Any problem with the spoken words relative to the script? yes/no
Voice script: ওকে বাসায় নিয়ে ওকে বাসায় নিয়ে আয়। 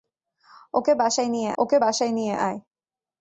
no